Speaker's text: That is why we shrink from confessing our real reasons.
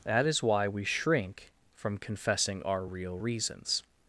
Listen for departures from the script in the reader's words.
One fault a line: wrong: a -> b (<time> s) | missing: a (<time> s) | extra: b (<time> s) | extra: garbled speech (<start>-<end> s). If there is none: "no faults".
no faults